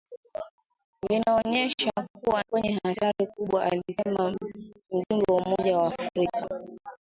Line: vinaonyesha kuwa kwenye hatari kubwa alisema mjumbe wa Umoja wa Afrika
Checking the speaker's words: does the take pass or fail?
pass